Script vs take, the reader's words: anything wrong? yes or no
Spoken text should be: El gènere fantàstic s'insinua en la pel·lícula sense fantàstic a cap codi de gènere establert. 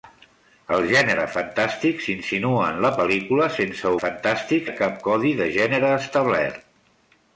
no